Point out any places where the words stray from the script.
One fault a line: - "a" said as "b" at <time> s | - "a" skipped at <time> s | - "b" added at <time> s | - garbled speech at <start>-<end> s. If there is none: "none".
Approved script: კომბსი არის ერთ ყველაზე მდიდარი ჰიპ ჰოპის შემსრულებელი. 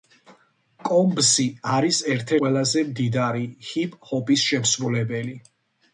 none